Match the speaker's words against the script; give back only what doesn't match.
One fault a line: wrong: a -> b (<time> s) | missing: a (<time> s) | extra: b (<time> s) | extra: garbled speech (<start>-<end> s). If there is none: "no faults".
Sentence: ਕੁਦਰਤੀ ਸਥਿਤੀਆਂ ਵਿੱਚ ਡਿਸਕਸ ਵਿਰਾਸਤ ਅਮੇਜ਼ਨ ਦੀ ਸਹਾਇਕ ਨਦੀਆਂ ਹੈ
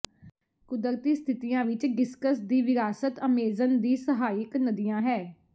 extra: ਦੀ (2.4 s)